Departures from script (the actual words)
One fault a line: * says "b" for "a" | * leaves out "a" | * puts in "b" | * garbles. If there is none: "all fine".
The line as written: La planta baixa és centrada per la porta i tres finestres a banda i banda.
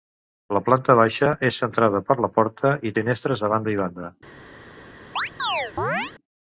* leaves out "tres"